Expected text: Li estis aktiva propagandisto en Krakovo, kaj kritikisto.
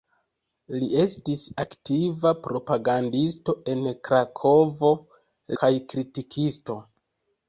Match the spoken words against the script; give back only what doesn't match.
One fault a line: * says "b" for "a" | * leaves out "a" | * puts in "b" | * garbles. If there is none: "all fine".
all fine